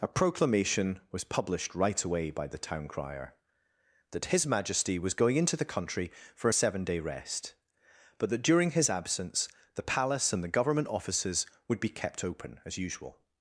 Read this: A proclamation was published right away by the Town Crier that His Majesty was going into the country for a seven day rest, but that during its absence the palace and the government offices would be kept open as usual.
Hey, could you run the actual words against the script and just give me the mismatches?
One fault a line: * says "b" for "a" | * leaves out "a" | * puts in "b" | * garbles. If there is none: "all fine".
* says "his" for "its"